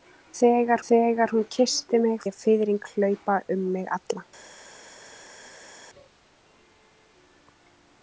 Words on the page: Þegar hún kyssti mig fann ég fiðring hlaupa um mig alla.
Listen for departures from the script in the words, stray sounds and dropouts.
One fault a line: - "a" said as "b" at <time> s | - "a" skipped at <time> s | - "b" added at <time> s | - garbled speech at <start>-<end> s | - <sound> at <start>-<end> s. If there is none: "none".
- "þegar" added at 0.9 s
- "fann" skipped at 2.2 s